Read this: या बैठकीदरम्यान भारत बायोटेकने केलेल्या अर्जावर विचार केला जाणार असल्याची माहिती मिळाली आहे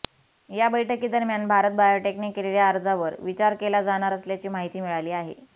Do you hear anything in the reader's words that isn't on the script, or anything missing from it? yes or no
no